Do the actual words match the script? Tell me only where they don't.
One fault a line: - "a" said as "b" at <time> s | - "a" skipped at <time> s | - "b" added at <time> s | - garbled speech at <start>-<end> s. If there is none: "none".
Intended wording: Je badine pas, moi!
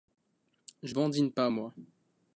none